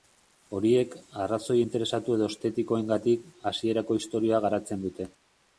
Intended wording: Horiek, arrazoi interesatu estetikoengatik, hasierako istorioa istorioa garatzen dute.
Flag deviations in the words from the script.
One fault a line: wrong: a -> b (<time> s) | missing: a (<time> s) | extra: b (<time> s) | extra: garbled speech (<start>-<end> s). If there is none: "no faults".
extra: edo (2.2 s)
missing: istorioa (4.4 s)